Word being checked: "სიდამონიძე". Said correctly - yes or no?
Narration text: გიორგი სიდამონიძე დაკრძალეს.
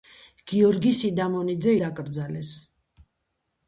yes